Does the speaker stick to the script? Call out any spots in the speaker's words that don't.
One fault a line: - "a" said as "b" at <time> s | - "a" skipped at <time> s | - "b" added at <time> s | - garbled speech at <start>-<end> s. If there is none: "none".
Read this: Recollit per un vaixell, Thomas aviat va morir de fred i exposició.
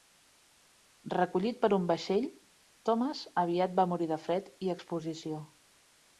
none